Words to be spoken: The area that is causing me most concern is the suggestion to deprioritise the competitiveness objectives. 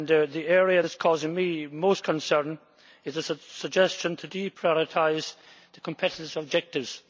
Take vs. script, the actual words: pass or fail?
pass